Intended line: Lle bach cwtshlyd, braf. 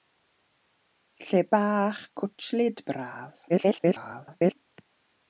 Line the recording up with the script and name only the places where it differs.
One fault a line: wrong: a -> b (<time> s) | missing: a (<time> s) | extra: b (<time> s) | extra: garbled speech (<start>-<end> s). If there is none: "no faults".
extra: garbled speech (3.5-4.5 s)